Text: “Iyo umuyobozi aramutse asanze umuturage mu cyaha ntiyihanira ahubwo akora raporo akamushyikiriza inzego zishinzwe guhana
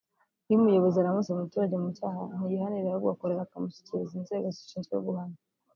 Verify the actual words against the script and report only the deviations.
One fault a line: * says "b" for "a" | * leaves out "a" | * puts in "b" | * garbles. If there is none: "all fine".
* leaves out "asanze"
* leaves out "raporo"